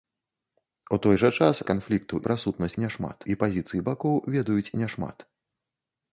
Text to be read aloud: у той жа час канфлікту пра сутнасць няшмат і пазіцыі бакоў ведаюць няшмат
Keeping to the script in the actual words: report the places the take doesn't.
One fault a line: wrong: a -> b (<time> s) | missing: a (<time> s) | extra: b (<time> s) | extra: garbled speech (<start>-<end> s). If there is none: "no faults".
no faults